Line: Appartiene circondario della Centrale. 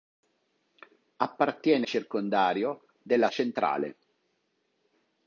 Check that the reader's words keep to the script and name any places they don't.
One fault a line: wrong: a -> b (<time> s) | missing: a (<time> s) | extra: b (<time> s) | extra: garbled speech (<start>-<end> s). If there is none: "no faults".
no faults